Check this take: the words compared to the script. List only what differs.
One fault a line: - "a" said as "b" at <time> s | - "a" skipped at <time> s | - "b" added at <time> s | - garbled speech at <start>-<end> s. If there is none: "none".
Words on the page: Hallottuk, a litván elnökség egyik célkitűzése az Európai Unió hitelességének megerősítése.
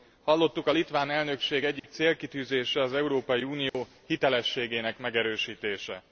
none